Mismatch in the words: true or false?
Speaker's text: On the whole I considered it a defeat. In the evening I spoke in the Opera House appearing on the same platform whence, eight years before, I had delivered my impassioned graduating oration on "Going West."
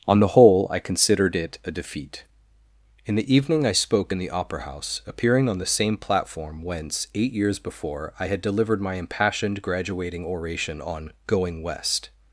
false